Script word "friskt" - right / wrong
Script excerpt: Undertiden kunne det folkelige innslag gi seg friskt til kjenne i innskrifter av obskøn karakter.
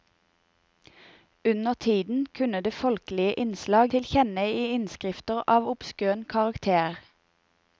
wrong